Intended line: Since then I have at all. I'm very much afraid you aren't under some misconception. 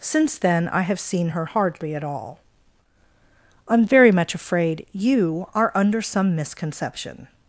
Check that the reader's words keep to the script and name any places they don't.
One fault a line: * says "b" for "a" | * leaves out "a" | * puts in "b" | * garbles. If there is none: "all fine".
* puts in "seen her hardly"
* says "are" for "aren't"